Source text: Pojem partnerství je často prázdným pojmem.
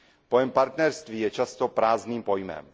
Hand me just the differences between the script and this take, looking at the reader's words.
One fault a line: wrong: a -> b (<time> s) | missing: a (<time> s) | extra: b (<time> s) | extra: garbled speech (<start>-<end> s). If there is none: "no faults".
no faults